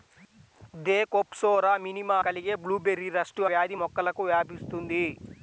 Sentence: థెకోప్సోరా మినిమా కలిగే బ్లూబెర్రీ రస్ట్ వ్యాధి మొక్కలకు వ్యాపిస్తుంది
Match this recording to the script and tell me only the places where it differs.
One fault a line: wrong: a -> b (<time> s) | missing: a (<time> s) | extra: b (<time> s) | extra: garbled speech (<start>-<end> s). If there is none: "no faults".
no faults